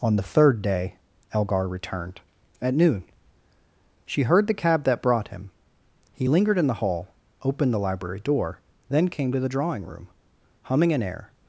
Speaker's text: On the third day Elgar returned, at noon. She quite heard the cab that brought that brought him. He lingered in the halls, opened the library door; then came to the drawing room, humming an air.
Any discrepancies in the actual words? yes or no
yes